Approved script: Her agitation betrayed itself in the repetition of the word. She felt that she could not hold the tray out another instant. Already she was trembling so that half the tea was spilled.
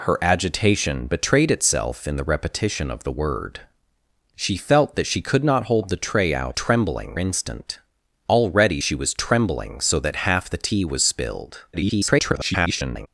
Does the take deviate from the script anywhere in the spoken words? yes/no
yes